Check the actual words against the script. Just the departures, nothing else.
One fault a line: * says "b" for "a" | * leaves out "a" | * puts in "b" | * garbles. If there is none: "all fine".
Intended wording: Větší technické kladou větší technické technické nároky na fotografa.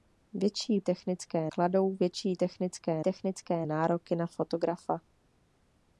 all fine